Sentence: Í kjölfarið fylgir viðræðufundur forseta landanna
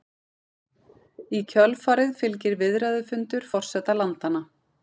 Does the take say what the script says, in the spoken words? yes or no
yes